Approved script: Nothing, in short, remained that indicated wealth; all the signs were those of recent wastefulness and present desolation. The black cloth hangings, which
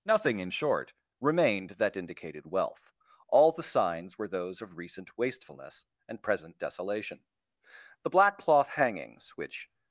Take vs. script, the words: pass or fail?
pass